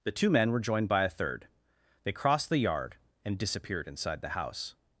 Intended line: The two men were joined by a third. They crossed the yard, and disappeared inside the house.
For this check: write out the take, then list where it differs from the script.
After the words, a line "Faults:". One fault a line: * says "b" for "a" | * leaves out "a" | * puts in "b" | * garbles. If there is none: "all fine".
The two men were joined by a third. They crossed the yard, and disappeared inside the house.
Faults:
all fine